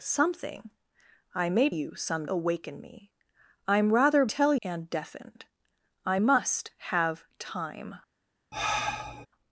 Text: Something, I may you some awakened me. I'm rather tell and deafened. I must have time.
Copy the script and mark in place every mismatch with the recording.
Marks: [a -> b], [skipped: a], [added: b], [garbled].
Something, I may you some awakened me. I'm rather tell and deafened. I must have time.